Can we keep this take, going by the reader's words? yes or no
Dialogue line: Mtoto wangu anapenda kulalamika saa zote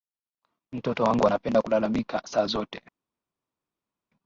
yes